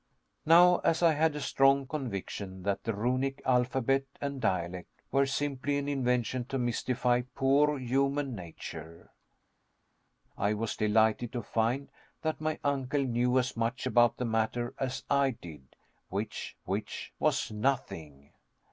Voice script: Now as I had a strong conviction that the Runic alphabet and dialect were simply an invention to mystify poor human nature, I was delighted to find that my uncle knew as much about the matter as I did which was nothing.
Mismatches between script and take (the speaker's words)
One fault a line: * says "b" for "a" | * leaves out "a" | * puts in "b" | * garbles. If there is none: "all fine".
* puts in "which"